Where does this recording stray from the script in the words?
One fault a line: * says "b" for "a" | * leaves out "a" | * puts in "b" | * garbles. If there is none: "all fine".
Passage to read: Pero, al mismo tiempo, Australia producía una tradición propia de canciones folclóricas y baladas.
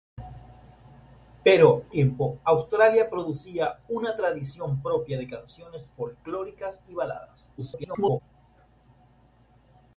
* leaves out "al mismo"
* garbles